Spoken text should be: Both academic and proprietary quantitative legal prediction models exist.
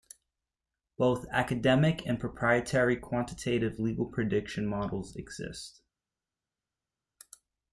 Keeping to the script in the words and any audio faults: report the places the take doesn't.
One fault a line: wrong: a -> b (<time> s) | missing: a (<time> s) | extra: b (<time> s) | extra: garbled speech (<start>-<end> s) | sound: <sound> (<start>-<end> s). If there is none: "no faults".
no faults